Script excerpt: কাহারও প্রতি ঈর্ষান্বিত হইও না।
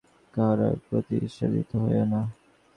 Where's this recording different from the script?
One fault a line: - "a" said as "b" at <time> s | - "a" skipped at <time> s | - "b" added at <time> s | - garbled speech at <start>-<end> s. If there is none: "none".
none